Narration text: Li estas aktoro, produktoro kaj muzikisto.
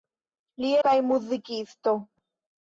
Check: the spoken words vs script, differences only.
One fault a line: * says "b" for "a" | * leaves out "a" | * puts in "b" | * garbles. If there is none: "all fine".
* leaves out "estas aktoro produktoro"